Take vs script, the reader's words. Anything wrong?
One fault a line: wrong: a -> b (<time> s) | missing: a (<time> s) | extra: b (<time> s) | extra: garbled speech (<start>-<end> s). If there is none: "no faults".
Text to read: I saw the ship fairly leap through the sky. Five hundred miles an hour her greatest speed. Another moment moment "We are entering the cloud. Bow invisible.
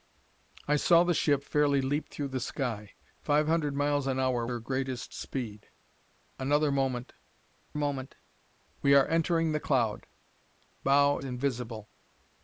no faults